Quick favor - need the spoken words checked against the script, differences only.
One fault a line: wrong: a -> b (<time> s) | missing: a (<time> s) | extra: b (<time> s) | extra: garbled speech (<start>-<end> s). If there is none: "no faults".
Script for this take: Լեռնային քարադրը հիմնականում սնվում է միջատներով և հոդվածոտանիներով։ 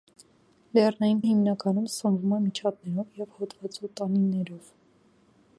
missing: քարադրը (1.2 s)